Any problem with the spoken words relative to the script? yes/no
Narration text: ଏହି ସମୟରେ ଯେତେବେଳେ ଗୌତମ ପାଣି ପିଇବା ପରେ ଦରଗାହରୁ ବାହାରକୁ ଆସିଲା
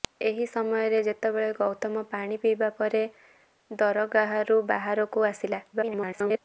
yes